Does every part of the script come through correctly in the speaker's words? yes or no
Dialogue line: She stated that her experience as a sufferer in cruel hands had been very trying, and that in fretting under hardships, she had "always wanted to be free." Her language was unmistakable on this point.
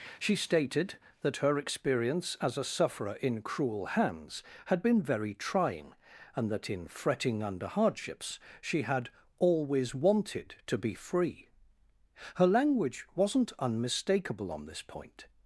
no